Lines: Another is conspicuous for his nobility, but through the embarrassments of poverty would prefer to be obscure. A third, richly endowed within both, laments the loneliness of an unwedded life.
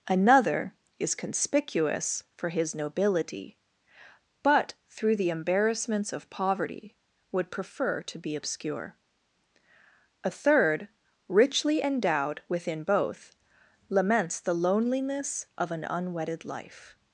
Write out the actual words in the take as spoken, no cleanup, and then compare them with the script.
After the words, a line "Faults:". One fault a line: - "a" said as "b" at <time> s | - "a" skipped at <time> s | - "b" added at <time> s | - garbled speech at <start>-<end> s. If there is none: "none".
Another is conspicuous for his nobility, but through the embarrassments of poverty would prefer to be obscure. A third, richly endowed within both, laments the loneliness of an unwedded life.
Faults:
none